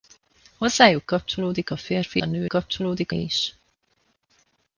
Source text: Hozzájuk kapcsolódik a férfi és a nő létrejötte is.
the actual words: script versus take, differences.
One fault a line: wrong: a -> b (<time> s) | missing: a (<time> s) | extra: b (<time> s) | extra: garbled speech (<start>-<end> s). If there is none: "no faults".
missing: és (2.2 s)
wrong: létrejötte -> kapcsolódik (2.5 s)